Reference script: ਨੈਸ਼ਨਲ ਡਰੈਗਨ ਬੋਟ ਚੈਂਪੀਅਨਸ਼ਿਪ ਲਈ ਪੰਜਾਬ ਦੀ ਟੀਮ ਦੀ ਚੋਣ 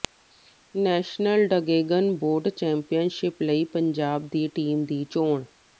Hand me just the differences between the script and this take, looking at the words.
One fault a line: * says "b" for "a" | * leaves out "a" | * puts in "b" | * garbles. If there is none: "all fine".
all fine